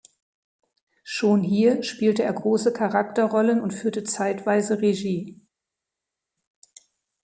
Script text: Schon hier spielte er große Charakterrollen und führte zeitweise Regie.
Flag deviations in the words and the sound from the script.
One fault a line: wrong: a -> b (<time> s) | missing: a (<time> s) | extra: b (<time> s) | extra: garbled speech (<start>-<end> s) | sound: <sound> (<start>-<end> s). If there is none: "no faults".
no faults